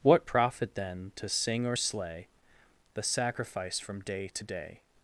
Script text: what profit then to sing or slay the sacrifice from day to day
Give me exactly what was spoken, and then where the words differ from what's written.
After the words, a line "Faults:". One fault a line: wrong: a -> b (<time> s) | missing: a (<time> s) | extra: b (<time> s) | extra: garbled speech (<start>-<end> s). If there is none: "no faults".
what profit then to sing or slay the sacrifice from day to day
Faults:
no faults